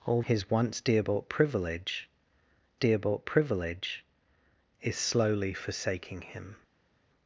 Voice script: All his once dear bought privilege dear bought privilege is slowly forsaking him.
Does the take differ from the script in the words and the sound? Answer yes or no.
no